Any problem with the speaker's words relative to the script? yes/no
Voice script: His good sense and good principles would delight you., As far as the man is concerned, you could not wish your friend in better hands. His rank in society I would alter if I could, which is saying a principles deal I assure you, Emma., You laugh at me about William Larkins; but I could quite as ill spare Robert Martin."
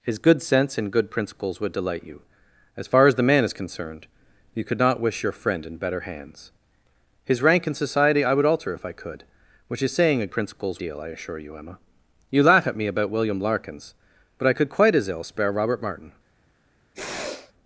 no